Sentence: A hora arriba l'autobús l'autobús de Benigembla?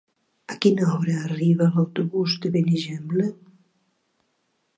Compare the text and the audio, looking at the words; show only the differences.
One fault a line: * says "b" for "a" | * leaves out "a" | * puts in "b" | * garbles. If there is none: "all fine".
* puts in "quina"
* leaves out "l'autobús"